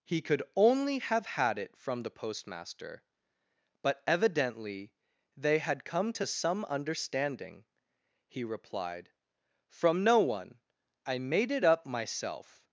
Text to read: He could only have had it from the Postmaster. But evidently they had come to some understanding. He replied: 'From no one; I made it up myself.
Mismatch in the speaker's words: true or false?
false